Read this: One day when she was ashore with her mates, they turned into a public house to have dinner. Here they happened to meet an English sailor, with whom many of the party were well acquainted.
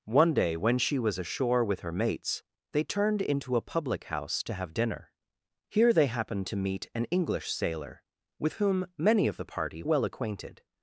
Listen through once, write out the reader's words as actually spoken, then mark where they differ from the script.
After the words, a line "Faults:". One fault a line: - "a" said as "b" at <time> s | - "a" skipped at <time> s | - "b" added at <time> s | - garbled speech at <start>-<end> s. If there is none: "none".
One day when she was ashore with her mates, they turned into a public house to have dinner. Here they happened to meet an English sailor, with whom many of the party well acquainted.
Faults:
- "were" skipped at 9.8 s